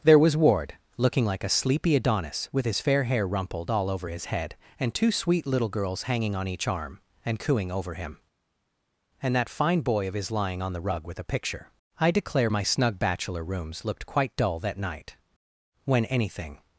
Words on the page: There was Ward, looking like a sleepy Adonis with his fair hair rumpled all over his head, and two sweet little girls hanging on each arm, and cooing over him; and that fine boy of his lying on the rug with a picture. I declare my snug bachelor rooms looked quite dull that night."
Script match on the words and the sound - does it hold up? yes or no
no